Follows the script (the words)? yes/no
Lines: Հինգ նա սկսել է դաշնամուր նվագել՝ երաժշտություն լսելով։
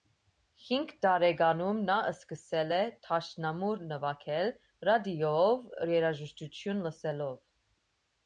no